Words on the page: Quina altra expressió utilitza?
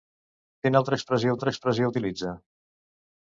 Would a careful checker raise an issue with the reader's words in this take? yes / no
yes